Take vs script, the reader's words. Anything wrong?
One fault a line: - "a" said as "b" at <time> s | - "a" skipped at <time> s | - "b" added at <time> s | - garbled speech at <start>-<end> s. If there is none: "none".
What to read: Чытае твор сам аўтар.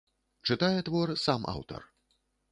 none